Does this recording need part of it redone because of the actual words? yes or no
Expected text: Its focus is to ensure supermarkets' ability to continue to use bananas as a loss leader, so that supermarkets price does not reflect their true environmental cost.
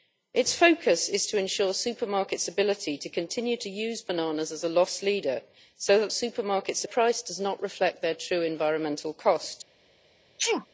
no